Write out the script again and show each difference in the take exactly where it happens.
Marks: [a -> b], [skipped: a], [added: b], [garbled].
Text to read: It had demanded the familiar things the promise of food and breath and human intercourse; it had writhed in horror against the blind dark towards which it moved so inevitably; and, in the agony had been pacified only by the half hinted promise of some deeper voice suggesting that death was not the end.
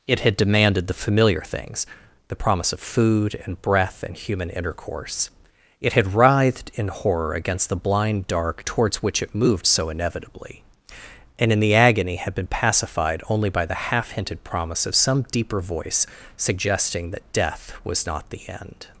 It had demanded the familiar things the promise of food and breath and human intercourse; it had writhed in horror against the blind dark towards which it moved so inevitably; and, in the agony had been pacified only by the half hinted promise of some deeper voice suggesting that death was not the end.